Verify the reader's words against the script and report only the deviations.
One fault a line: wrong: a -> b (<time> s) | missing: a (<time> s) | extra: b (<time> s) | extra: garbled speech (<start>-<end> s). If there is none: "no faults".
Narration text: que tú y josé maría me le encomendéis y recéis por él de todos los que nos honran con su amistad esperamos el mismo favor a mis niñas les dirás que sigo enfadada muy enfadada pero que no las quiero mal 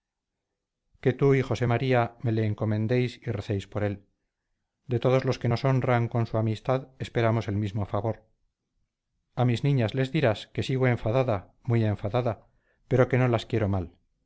no faults